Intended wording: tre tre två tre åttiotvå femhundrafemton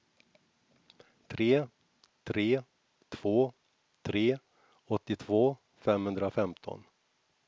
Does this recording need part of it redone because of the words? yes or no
no